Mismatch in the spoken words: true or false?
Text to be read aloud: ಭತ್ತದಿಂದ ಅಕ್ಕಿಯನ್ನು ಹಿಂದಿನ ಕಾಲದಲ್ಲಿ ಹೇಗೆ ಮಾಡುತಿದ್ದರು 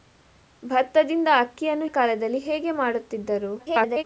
true